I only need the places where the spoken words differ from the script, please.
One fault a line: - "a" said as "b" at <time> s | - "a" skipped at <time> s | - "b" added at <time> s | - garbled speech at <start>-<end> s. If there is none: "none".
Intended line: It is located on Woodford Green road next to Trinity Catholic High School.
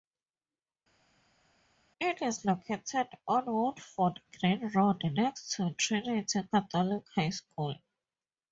none